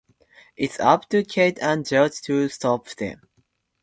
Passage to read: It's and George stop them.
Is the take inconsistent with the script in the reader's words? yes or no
yes